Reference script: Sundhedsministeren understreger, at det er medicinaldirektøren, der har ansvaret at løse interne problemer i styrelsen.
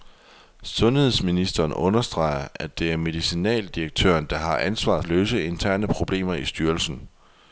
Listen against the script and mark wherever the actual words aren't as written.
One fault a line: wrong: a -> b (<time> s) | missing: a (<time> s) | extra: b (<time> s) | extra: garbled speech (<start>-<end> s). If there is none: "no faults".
no faults